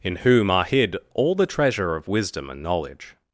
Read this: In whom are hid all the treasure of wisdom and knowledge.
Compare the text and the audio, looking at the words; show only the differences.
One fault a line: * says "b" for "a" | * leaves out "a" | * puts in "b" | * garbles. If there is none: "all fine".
all fine